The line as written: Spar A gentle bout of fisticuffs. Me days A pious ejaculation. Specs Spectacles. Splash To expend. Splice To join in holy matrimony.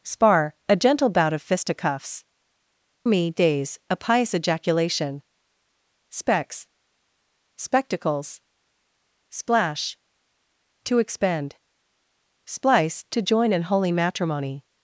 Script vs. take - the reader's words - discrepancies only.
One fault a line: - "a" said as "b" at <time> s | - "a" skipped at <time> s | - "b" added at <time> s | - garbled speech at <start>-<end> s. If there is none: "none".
none